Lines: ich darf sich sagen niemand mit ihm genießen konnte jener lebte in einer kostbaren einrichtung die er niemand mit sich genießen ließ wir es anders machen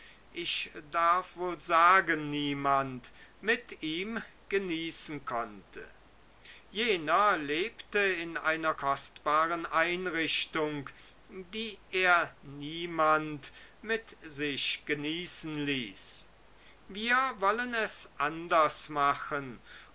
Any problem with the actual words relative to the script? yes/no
yes